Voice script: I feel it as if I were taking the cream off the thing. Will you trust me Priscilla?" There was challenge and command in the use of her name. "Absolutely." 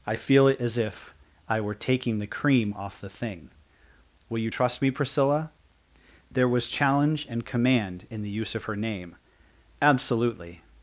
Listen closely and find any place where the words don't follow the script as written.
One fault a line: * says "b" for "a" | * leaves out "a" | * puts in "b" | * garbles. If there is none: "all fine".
all fine